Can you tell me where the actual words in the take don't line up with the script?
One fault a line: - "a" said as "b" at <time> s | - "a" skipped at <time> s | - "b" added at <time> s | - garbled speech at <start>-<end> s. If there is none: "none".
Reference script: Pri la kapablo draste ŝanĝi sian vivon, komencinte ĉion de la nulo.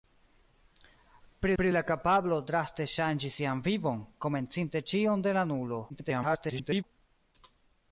- "pri" added at 1.6 s
- garbled speech at 5.9-6.8 s